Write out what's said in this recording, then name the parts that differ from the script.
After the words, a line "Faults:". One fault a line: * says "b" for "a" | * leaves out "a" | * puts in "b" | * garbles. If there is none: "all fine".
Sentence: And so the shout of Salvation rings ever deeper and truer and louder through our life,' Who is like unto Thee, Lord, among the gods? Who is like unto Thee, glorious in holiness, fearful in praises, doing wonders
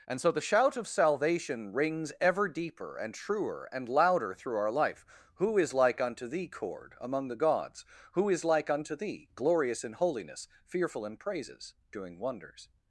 And so the shout of Salvation rings ever deeper and truer and louder through our life,' Who is like unto Thee, Cord, among the gods? Who is like unto Thee, glorious in holiness, fearful in praises, doing wonders
Faults:
* says "Cord" for "Lord"